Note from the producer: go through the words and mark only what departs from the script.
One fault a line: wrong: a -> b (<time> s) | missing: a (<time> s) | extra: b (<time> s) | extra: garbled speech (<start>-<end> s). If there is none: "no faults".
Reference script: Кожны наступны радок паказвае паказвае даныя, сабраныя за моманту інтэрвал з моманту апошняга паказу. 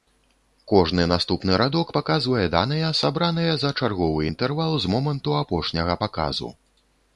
missing: паказвае (2.5 s)
wrong: моманту -> чарговы (3.8 s)